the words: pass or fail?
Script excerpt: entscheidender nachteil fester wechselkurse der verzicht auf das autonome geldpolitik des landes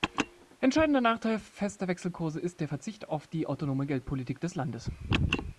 fail